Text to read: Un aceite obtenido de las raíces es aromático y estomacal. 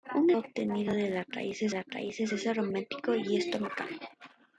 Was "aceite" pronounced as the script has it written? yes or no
no